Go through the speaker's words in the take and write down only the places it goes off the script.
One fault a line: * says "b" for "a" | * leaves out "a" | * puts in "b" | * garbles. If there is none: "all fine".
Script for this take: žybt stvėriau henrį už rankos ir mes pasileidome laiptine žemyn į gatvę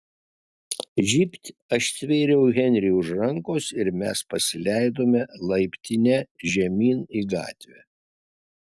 * puts in "aš"